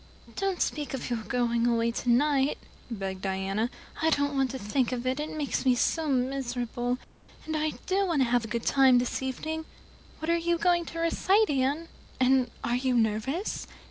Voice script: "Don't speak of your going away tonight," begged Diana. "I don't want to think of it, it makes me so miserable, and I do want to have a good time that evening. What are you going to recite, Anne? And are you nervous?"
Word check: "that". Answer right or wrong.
wrong